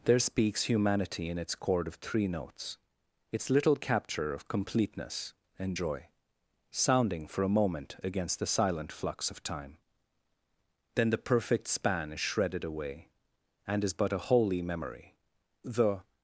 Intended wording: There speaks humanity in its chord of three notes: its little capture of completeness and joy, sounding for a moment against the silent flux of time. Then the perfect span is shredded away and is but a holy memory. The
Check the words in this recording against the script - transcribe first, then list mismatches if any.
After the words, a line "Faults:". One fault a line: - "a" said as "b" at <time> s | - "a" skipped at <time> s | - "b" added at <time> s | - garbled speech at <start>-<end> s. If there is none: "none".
There speaks humanity in its chord of three notes: its little capture of completeness and joy, sounding for a moment against the silent flux of time. Then the perfect span is shredded away and is but a holy memory. The
Faults:
none